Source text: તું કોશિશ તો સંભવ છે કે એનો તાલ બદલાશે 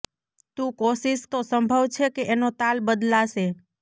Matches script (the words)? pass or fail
pass